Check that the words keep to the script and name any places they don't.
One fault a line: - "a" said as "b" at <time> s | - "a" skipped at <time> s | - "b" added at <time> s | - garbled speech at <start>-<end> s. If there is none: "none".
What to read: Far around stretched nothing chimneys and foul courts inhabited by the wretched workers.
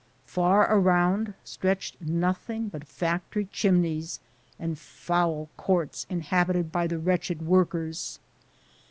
- "but factory" added at 2.7 s